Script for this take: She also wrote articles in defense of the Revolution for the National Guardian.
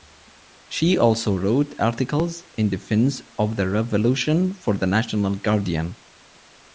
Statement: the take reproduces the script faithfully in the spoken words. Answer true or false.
true